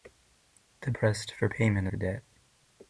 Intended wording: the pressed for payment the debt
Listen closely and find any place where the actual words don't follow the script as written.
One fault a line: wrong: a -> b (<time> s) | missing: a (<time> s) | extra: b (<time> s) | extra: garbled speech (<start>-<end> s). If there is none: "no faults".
no faults